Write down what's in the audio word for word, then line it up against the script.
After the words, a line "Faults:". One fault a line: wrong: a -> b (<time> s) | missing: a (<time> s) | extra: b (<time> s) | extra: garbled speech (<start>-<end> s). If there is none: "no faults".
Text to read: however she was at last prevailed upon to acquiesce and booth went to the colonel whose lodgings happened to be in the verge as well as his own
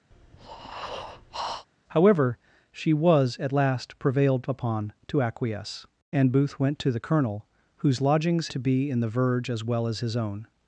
however she was at last prevailed upon to acquiesce and booth went to the colonel whose lodgings to be in the verge as well as his own
Faults:
missing: happened (8.5 s)